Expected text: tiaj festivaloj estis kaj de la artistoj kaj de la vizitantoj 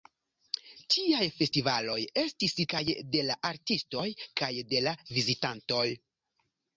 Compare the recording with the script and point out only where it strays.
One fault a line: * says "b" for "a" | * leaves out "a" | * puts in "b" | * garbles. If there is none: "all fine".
all fine